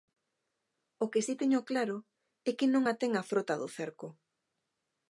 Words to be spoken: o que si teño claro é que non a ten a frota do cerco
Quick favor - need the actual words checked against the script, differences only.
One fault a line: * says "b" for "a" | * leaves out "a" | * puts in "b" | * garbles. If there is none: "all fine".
all fine